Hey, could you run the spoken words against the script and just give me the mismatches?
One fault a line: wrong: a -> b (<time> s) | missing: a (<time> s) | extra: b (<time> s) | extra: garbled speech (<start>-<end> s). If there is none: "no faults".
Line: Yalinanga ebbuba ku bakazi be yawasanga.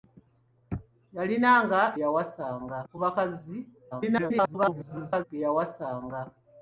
wrong: ebbuba -> yawasanga (2.0 s)
extra: garbled speech (3.9-5.2 s)